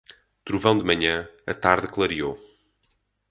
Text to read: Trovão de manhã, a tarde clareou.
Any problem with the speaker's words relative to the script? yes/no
no